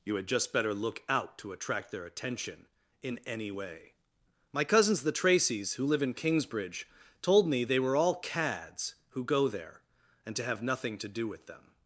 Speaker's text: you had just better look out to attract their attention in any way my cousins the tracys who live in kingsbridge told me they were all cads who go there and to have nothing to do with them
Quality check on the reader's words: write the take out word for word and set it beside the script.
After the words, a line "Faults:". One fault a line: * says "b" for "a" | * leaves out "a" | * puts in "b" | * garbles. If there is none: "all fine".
you had just better look out to attract their attention in any way my cousins the tracys who live in kingsbridge told me they were all cads who go there and to have nothing to do with them
Faults:
all fine